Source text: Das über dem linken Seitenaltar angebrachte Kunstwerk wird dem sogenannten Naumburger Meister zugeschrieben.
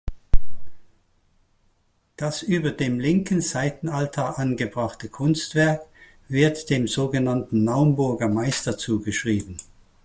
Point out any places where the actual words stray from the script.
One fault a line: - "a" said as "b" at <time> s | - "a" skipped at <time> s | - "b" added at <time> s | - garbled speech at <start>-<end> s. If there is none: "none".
none